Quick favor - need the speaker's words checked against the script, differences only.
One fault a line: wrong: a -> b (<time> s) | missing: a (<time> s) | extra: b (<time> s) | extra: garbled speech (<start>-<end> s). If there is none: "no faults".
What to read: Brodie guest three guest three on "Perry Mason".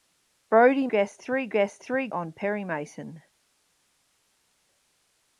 no faults